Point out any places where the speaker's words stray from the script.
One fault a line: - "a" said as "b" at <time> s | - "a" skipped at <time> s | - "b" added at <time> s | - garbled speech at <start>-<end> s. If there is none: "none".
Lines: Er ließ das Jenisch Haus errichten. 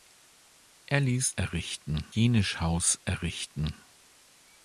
- "das" said as "errichten" at 1.3 s